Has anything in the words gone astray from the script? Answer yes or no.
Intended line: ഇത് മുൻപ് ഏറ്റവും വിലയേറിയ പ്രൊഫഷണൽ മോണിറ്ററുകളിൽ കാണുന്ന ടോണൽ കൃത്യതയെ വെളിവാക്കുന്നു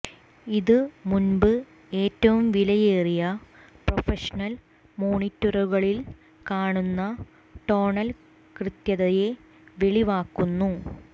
no